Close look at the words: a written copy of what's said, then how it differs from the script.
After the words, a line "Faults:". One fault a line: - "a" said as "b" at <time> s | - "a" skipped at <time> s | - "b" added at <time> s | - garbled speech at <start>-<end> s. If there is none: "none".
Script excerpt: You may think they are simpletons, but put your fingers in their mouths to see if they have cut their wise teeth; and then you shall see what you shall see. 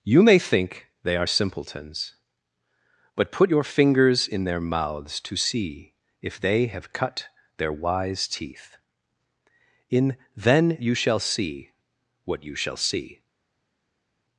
You may think they are simpletons, but put your fingers in their mouths to see if they have cut their wise teeth; in then you shall see what you shall see.
Faults:
- "and" said as "in" at 9.9 s